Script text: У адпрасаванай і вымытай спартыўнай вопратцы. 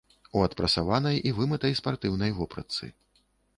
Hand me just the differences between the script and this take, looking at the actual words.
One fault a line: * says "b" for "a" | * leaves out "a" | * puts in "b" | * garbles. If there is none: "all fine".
all fine